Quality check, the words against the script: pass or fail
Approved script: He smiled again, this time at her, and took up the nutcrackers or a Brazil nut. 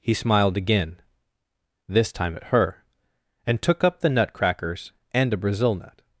fail